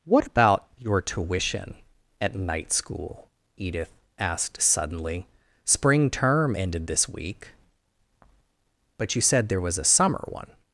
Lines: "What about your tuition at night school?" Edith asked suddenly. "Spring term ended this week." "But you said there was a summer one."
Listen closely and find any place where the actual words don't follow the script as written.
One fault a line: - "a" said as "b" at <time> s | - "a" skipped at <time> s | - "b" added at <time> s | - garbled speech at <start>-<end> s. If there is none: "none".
none